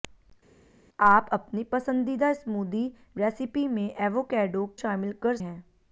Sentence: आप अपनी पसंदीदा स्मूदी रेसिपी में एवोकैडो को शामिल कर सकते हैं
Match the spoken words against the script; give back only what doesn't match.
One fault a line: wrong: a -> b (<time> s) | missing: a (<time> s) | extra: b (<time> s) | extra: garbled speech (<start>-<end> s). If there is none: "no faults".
missing: को (4.7 s)
missing: सकते (5.4 s)